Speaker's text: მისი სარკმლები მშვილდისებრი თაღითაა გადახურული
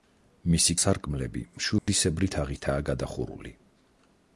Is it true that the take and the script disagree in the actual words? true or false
false